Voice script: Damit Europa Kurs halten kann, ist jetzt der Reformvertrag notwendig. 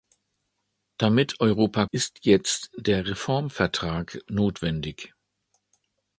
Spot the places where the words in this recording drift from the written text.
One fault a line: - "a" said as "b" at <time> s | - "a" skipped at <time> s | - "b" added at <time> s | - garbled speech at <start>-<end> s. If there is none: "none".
- "Kurs halten kann" skipped at 1.9 s